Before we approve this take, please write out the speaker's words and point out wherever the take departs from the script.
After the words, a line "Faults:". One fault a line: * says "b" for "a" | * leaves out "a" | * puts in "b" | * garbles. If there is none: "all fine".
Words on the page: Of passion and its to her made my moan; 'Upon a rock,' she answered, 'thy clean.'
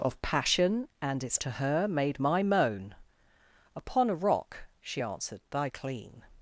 Of passion and its to her made my moan; 'Upon a rock,' she answered, 'thy clean.'
Faults:
all fine